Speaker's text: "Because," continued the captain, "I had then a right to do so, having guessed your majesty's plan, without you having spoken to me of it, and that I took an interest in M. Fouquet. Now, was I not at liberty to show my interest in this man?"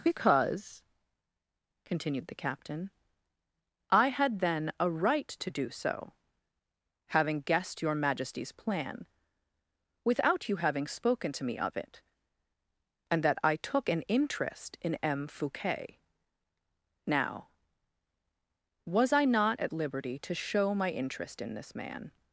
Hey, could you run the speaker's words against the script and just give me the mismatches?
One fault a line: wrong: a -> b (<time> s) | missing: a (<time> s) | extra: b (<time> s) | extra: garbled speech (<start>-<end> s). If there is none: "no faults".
no faults